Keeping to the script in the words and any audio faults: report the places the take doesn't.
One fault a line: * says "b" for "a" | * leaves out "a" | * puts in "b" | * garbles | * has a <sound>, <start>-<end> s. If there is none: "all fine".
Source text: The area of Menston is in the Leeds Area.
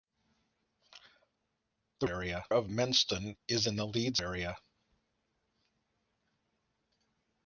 all fine